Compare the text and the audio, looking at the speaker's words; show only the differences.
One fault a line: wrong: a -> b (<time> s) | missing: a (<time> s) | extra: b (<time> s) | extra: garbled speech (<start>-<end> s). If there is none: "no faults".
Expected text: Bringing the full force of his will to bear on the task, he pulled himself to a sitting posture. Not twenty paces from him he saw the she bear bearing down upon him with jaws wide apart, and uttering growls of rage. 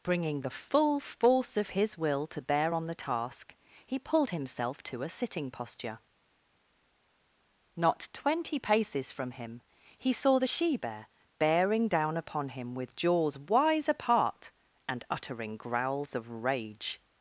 wrong: wide -> wise (13.4 s)